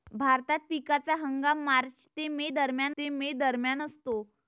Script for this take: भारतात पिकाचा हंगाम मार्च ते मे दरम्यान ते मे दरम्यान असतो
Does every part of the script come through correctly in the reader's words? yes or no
yes